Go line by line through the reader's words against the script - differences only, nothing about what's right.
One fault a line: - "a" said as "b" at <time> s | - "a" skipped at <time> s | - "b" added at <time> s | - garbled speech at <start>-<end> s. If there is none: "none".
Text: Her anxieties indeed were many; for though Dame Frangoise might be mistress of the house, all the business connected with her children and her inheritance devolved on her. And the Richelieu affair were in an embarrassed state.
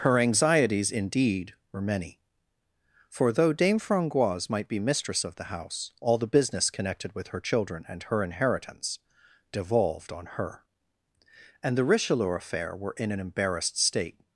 none